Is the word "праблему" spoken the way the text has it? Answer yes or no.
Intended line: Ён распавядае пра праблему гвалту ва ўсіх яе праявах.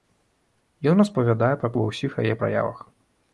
no